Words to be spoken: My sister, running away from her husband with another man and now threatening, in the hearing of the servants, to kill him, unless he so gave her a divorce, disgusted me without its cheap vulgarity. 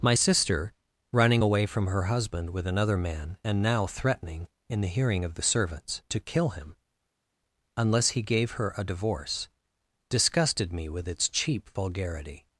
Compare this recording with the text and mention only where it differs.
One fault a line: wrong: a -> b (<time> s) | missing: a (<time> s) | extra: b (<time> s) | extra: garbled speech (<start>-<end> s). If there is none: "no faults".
missing: so (8.2 s)
wrong: without -> with (10.9 s)